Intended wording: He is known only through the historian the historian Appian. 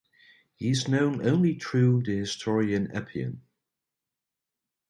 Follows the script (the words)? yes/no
no